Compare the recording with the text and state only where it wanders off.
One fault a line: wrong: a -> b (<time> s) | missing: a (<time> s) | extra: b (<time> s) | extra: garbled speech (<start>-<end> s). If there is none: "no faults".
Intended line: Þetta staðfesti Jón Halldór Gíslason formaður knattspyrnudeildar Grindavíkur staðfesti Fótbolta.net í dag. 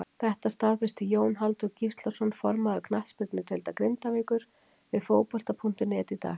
wrong: staðfesti -> við (4.9 s)